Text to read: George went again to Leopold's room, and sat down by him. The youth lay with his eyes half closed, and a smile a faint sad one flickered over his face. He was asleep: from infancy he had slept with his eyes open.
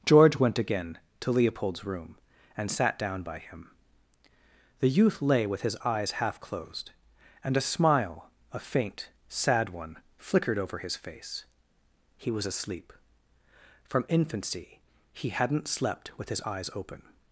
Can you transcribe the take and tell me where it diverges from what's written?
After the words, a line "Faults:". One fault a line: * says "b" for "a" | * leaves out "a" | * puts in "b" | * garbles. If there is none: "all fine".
George went again to Leopold's room, and sat down by him. The youth lay with his eyes half closed, and a smile a faint sad one flickered over his face. He was asleep: from infancy he hadn't slept with his eyes open.
Faults:
* says "hadn't" for "had"